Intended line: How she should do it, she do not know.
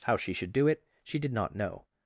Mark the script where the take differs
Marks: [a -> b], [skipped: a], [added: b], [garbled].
How she should do it, she [do -> did] not know.